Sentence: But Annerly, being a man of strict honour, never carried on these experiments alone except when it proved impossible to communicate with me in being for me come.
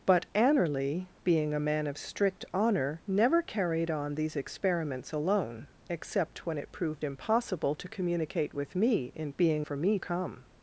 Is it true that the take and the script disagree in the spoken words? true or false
false